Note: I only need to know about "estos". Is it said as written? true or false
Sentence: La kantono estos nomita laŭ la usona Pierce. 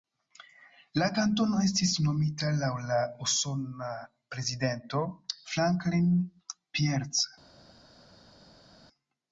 false